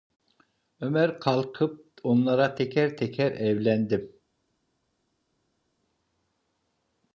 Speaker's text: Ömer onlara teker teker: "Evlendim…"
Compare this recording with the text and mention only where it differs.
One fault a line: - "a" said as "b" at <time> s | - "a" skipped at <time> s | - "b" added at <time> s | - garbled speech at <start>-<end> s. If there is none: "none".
- "kalkıp" added at 1.2 s